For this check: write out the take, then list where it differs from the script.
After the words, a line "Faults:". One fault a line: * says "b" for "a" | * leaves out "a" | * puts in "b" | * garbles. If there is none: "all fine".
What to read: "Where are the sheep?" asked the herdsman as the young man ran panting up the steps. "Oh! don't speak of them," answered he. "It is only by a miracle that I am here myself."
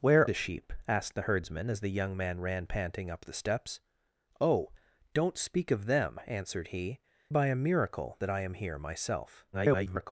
"Where the sheep?" asked the herdsman as the young man ran panting up the steps. "Oh! don't speak of them," answered he. "By a miracle that I am here myself." [garbled]
Faults:
* leaves out "are"
* leaves out "It is only"
* garbles